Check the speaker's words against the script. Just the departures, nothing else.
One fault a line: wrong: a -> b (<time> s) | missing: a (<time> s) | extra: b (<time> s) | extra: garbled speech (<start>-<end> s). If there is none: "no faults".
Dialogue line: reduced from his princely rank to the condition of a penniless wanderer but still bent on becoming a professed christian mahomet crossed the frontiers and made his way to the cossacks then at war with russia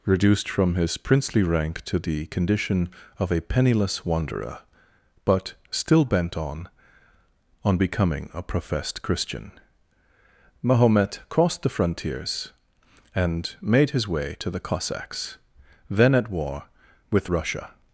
extra: on (7.6 s)